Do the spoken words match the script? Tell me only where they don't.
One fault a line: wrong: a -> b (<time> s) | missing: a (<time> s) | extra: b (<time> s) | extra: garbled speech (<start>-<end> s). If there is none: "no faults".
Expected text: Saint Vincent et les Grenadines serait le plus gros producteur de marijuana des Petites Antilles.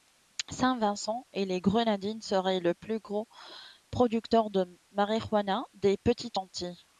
no faults